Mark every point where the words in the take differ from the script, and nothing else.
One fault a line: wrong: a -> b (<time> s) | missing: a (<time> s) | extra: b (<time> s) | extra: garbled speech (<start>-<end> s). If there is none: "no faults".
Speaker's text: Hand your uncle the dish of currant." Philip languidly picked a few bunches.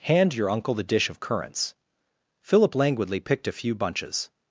wrong: currant -> currants (1.2 s)